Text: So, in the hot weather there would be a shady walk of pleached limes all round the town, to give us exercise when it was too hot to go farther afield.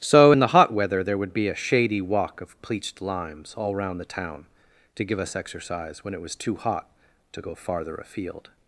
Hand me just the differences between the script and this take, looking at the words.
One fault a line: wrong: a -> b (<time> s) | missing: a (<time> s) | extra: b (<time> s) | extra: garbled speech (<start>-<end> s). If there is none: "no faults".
no faults